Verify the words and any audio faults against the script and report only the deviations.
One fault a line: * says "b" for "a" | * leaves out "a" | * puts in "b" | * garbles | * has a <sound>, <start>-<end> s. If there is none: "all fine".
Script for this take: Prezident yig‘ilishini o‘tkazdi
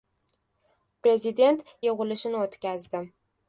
all fine